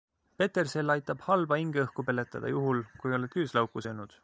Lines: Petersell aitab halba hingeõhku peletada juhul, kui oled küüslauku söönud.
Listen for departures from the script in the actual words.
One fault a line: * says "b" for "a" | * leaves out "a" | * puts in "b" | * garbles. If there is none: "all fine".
all fine